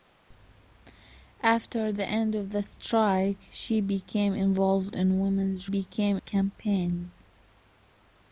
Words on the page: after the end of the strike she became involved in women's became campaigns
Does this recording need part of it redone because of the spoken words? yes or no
no